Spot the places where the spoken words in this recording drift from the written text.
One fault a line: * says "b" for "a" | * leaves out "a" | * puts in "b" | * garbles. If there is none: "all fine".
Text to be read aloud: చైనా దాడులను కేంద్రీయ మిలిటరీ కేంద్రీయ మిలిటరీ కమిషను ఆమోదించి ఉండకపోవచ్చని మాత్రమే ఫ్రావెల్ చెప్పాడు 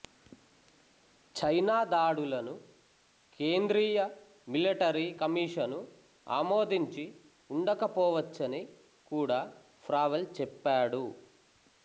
* leaves out "కేంద్రీయ మిలిటరీ"
* says "కూడా" for "మాత్రమే"